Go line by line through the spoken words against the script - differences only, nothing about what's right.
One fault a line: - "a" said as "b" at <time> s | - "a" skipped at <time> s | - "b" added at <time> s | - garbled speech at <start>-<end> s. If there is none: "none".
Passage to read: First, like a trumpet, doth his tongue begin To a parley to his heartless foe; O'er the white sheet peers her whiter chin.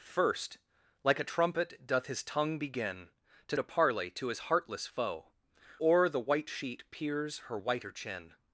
none